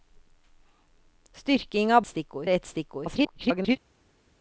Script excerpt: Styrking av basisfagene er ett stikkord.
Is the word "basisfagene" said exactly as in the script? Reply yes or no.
no